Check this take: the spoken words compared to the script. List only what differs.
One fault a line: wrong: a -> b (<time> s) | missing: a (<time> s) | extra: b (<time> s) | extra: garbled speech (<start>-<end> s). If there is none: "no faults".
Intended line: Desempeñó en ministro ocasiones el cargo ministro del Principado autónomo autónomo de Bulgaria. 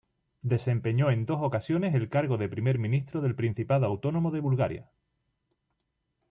wrong: ministro -> dos (1.3 s)
extra: de primer (2.4 s)
missing: autónomo (4.3 s)